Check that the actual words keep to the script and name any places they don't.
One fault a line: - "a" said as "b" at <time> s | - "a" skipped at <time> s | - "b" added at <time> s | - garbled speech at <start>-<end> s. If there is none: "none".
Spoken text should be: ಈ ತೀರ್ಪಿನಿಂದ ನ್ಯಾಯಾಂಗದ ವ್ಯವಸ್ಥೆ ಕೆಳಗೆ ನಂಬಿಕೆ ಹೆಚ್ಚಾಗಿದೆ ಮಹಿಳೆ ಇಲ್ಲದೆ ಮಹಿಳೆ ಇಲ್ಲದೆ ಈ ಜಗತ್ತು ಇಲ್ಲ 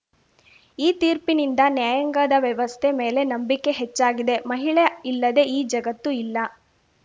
- "ಕೆಳಗೆ" said as "ಮೇಲೆ" at 3.0 s
- "ಮಹಿಳೆ ಇಲ್ಲದೆ" skipped at 5.5 s